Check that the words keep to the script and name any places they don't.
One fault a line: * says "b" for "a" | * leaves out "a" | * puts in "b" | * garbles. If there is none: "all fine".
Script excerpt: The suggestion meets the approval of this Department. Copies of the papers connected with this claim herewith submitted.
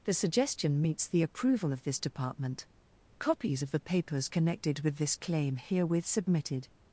all fine